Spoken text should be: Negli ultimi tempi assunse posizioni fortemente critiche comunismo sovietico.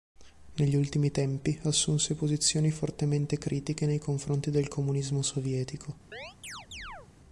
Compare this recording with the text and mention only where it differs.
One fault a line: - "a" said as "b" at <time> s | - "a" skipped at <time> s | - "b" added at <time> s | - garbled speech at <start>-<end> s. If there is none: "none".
- "nei confronti del" added at 3.9 s